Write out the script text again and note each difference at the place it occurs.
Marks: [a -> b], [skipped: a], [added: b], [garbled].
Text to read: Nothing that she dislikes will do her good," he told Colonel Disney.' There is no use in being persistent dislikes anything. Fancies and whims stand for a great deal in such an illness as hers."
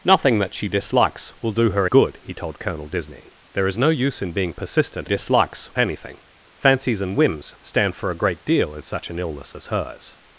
Nothing that she dislikes will do her good," he told Colonel Disney.' There is no use in being persistent dislikes anything. Fancies and whims stand for a great deal in such an illness as hers."